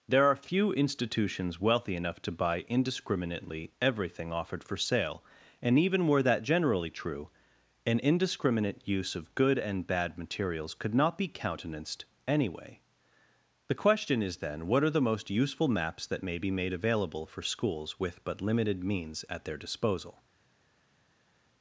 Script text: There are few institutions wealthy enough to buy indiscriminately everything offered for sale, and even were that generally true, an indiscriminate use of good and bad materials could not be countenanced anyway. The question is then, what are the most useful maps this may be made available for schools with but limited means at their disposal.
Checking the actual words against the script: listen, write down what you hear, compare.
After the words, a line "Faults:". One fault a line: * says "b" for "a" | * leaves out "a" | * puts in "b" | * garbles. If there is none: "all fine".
There are few institutions wealthy enough to buy indiscriminately everything offered for sale, and even were that generally true, an indiscriminate use of good and bad materials could not be countenanced anyway. The question is then, what are the most useful maps that may be made available for schools with but limited means at their disposal.
Faults:
* says "that" for "this"